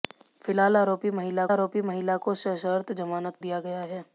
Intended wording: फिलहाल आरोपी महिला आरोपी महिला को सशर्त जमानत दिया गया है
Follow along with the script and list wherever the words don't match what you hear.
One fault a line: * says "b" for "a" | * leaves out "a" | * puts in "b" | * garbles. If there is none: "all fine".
all fine